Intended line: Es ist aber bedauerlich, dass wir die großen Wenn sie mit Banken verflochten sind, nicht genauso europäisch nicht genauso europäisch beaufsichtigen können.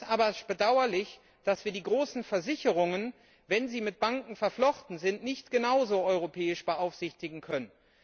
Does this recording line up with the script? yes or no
no